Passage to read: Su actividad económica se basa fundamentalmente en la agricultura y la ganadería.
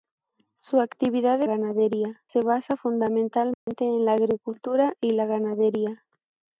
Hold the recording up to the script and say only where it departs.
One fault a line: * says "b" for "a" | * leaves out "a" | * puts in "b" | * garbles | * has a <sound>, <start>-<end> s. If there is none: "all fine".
* says "ganadería" for "económica"
* has a dropout, 3.5-3.7 s